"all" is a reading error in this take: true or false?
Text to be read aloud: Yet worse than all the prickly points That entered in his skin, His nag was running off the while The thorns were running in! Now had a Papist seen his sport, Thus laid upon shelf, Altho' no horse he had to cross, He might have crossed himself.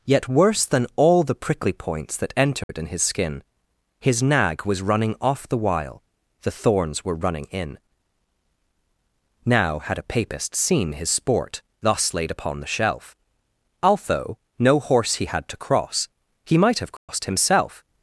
false